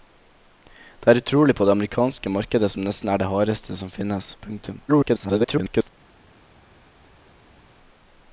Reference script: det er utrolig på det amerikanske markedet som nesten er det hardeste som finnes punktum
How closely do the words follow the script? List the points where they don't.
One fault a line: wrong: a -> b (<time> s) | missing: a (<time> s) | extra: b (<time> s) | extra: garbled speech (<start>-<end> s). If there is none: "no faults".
extra: garbled speech (4.9-5.9 s)